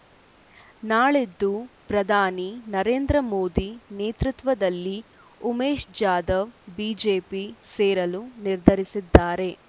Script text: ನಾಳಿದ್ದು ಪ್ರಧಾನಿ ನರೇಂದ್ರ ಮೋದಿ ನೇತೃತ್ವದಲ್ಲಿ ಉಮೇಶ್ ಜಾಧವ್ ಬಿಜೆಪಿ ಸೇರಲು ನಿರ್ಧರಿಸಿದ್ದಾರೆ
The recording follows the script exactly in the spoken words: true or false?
true